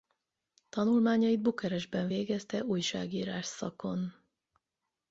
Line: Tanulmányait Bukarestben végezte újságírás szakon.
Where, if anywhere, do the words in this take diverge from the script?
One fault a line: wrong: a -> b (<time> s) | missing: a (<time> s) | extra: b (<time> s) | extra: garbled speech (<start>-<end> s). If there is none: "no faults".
no faults